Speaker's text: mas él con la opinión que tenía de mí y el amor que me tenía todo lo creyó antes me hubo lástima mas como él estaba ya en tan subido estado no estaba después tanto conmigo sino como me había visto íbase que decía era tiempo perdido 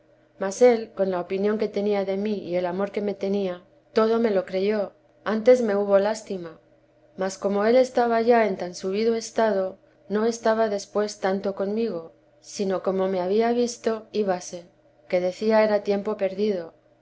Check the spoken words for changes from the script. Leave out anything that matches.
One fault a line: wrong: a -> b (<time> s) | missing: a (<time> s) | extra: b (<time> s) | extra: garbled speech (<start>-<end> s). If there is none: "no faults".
extra: me (4.2 s)